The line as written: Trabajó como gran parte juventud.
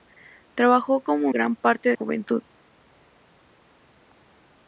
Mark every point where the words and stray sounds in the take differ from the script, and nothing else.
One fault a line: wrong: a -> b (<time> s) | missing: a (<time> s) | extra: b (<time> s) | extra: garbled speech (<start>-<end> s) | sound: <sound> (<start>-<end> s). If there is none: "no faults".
no faults